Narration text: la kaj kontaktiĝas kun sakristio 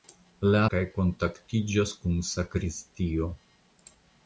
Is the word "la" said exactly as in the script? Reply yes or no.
yes